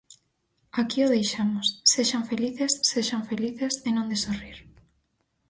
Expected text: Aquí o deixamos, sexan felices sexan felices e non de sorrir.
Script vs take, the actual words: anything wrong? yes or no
no